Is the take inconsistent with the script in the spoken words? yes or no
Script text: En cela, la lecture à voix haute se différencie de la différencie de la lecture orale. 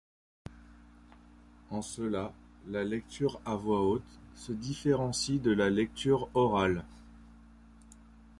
yes